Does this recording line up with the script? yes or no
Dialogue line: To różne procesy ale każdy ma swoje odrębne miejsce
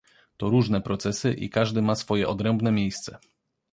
no